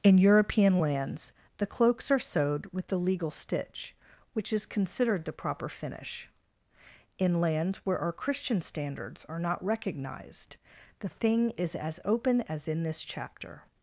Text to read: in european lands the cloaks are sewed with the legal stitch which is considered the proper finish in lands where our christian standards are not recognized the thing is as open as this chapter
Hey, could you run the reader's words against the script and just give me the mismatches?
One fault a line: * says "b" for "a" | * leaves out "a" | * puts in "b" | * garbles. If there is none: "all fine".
* puts in "in"